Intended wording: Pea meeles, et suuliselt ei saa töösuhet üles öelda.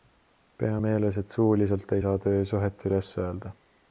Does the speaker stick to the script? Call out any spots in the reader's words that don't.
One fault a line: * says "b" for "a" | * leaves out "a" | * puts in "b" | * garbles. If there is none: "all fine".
all fine